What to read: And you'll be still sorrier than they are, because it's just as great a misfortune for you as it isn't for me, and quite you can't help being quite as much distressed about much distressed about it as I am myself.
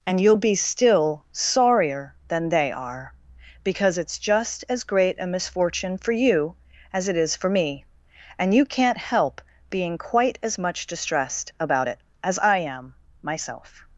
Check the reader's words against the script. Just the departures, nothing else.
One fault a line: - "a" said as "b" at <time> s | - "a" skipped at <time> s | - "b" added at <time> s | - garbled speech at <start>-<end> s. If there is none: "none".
- "isn't" said as "is" at 7.2 s
- "quite" skipped at 8.5 s
- "much distressed about" skipped at 11.9 s